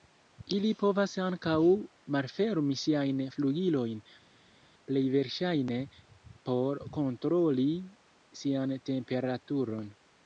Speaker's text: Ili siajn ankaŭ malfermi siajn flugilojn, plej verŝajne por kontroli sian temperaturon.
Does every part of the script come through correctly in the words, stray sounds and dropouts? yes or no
no